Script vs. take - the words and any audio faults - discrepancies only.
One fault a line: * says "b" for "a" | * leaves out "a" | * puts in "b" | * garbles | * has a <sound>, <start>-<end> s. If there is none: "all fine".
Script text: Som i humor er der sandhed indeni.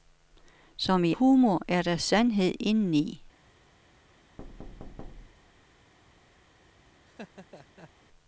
* has a thud, 4.4-5.7 s
* has a laugh, 7.0-7.9 s